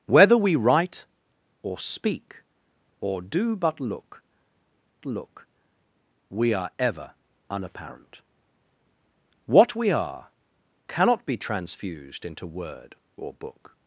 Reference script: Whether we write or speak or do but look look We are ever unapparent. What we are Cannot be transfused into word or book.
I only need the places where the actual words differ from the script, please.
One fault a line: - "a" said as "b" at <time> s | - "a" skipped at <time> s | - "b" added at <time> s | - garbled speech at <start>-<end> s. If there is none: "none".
none